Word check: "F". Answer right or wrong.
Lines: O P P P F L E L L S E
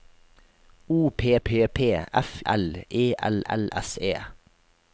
right